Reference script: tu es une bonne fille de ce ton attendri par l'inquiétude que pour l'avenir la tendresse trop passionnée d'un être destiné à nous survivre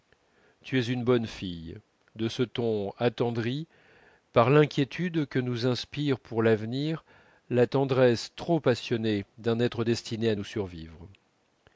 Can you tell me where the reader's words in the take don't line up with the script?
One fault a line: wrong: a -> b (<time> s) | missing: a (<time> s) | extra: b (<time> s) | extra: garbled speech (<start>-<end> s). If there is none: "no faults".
extra: nous inspire (5.4 s)